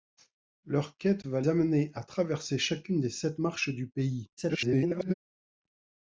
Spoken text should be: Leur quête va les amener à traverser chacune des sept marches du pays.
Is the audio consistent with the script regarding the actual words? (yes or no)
no